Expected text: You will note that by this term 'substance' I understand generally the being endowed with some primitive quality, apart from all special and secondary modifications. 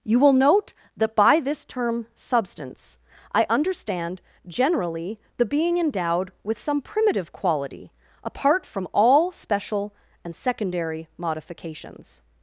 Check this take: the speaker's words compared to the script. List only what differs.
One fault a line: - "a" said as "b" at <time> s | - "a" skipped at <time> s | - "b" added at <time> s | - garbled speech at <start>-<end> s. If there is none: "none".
none